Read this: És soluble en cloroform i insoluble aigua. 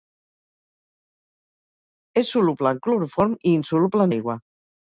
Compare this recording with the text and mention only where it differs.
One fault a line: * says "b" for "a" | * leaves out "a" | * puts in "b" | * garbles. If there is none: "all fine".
all fine